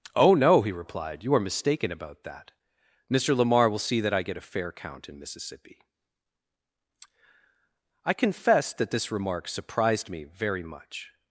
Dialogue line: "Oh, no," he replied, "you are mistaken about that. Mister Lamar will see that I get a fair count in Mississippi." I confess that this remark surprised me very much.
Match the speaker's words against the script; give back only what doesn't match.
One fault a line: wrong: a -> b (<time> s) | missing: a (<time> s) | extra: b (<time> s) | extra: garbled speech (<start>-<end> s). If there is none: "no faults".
no faults